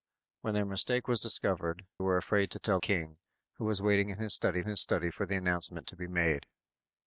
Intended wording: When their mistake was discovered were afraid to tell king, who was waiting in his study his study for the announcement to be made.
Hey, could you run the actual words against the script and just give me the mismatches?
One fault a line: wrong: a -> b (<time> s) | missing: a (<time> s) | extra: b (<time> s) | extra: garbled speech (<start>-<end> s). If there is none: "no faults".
no faults